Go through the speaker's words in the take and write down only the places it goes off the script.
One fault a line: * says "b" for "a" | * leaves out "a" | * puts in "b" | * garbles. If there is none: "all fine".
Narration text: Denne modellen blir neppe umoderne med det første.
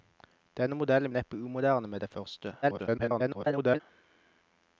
* leaves out "blir"
* garbles